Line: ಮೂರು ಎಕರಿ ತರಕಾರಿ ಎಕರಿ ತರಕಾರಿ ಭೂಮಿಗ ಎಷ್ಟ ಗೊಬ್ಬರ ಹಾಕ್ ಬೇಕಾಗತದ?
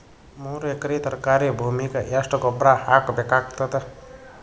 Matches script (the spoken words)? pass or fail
fail